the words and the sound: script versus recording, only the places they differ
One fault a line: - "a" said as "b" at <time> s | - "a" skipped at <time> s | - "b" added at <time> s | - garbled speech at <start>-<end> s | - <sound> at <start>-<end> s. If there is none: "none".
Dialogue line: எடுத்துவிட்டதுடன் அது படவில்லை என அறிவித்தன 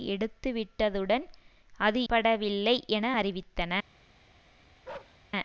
- bark at 4.8-5.2 s